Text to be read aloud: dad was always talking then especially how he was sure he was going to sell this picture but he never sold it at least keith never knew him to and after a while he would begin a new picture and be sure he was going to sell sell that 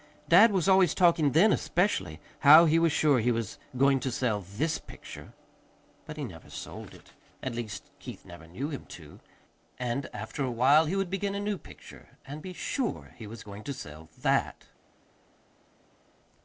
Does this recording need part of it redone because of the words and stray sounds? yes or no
yes